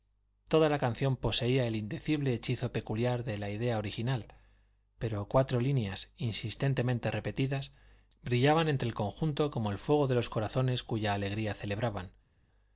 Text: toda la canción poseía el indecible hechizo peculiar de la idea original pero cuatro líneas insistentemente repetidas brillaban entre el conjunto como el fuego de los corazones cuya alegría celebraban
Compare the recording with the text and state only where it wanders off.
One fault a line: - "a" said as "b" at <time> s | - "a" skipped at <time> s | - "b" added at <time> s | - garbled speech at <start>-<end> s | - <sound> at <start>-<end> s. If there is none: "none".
none